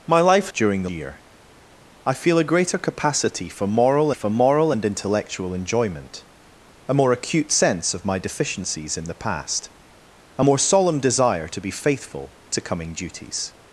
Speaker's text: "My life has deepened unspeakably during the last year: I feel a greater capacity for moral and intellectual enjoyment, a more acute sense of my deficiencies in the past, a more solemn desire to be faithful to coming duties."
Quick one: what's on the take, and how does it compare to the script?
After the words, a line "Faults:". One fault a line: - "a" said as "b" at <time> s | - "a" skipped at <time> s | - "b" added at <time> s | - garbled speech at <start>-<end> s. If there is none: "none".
"My life during the year: I feel a greater capacity for moral for moral and intellectual enjoyment, a more acute sense of my deficiencies in the past, a more solemn desire to be faithful to coming duties."
Faults:
- "has deepened unspeakably" skipped at 0.5 s
- "last" skipped at 0.9 s
- "for moral" added at 4.1 s